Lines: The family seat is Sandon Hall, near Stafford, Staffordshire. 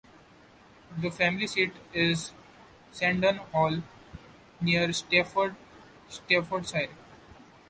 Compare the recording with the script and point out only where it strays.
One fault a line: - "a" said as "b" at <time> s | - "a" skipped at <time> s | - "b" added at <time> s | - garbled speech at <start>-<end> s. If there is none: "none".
none